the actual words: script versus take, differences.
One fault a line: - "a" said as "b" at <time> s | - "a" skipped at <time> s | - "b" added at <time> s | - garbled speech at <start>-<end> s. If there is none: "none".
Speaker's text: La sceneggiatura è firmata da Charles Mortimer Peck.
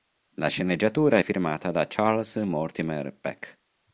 none